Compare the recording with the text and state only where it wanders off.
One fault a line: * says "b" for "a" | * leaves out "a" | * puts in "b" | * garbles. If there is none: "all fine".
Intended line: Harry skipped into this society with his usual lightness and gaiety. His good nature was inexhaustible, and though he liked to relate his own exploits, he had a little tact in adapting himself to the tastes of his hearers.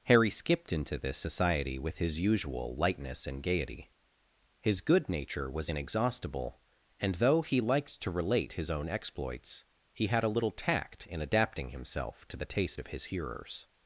* says "taste" for "tastes"